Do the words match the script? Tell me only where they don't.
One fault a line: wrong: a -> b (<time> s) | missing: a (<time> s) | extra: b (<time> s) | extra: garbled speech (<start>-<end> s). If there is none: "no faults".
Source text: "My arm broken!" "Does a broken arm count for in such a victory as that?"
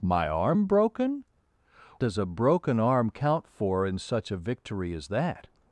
no faults